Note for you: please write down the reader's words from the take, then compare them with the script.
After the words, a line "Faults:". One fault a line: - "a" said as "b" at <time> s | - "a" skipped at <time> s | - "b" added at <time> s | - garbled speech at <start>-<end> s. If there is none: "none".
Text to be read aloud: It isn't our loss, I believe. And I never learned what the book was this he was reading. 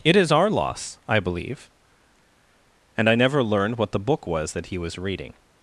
It is our loss, I believe. And I never learned what the book was that he was reading.
Faults:
- "isn't" said as "is" at 0.1 s
- "this" said as "that" at 4.5 s